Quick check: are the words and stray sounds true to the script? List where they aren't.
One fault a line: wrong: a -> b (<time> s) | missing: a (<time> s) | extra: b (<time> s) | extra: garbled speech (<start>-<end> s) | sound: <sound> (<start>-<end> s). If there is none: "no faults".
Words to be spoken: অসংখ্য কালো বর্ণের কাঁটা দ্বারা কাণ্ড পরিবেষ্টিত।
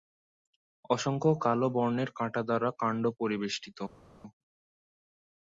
no faults